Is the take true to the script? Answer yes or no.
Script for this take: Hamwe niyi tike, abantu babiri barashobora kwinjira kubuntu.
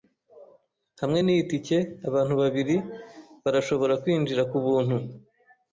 yes